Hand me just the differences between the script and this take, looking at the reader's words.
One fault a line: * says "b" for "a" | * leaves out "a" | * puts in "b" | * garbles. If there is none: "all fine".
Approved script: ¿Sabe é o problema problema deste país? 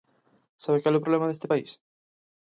* puts in "cal"
* leaves out "problema"